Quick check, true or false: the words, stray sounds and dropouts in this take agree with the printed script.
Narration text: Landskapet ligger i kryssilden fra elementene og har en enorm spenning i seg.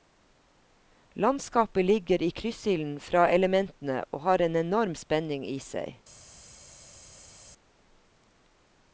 true